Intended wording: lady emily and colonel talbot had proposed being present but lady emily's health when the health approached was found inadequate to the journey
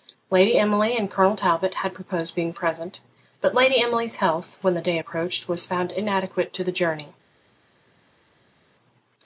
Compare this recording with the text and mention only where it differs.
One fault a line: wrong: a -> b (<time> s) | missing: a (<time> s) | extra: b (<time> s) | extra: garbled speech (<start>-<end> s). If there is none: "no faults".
wrong: health -> day (4.8 s)